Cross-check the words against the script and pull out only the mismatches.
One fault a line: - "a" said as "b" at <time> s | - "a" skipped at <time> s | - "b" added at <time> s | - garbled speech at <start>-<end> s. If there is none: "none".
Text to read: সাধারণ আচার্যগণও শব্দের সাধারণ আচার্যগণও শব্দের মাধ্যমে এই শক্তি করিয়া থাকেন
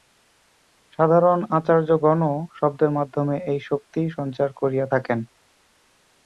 - "সাধারণ আচার্যগণও শব্দের" skipped at 2.9 s
- "সঞ্চার" added at 4.2 s